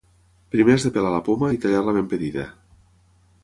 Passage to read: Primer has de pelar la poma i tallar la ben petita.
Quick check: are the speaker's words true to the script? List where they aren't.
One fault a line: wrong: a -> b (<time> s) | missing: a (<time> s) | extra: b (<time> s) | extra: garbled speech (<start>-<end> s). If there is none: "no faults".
no faults